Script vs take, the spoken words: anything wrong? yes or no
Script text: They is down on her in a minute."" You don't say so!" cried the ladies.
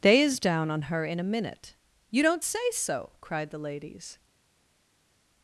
no